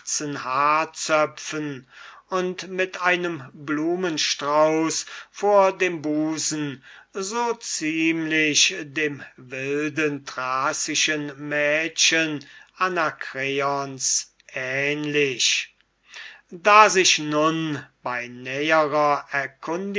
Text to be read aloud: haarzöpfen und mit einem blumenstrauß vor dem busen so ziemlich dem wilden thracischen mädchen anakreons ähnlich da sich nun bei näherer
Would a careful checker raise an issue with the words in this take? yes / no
no